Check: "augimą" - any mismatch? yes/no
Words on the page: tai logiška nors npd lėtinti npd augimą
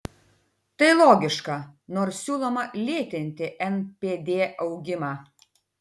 no